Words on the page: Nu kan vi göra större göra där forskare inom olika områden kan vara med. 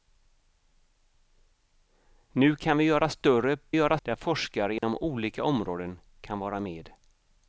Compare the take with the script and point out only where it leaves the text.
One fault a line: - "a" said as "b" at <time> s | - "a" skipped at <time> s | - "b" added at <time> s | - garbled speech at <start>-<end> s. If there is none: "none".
none